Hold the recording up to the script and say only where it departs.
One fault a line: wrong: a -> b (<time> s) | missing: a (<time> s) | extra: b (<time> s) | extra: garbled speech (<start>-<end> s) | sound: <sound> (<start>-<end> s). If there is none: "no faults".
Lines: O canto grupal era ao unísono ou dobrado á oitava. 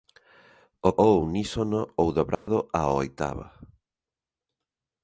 missing: canto grupal era (0.9 s)
sound: dropout (2.3-2.5 s)